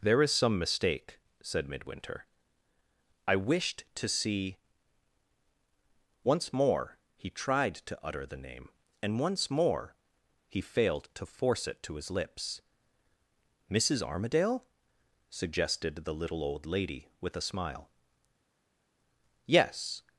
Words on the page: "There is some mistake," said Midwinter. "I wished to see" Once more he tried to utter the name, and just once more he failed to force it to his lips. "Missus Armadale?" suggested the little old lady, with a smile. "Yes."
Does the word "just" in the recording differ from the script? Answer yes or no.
yes